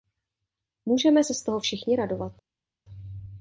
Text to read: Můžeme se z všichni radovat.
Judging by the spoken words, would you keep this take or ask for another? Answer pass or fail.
fail